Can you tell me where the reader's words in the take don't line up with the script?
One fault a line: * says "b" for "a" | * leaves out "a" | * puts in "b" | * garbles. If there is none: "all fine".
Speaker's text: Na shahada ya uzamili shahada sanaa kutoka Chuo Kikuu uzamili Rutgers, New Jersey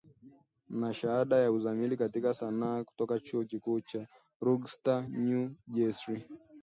* says "katika" for "shahada"
* says "cha" for "uzamili"